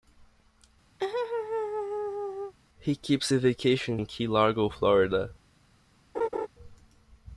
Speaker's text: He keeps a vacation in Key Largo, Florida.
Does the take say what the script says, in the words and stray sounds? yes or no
no